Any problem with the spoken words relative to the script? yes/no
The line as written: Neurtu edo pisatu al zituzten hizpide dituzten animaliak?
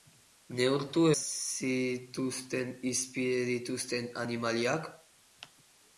yes